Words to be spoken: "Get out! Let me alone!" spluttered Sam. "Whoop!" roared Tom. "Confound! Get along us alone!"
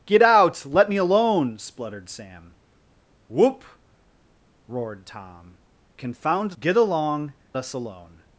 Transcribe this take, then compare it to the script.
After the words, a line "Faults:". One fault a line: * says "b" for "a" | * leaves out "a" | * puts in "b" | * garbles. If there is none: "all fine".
"Get out! Let me alone!" spluttered Sam. "Whoop!" roared Tom. "Confound! Get along us alone!"
Faults:
all fine